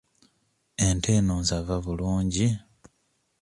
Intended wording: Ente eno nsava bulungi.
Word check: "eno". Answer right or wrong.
right